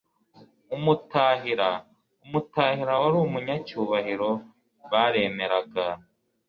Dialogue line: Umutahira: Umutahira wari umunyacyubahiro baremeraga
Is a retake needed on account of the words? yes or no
no